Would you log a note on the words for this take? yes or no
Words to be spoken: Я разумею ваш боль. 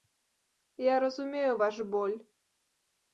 no